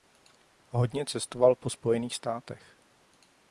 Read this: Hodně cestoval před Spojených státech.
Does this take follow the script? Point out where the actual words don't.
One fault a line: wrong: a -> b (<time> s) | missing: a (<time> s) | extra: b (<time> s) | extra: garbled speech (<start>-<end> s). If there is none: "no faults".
wrong: před -> po (1.5 s)